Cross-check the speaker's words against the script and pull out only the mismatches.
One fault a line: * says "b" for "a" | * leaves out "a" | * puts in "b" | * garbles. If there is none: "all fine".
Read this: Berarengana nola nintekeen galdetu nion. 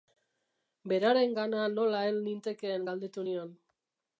* puts in "hel"